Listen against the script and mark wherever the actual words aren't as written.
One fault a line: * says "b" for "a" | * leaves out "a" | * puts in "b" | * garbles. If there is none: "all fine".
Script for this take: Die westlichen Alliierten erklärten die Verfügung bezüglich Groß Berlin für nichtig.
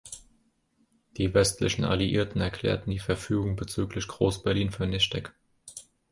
all fine